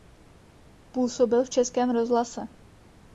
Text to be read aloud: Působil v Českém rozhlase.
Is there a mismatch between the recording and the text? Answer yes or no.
no